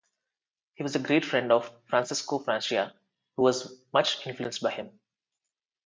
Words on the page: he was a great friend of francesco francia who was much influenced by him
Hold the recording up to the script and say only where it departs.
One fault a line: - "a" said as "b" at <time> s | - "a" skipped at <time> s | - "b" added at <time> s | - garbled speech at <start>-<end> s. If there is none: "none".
none